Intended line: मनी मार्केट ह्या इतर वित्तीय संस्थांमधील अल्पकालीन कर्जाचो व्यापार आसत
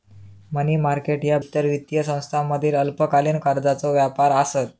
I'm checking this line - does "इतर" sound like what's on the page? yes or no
yes